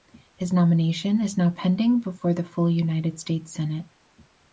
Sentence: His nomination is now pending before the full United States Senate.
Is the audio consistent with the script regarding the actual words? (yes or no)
yes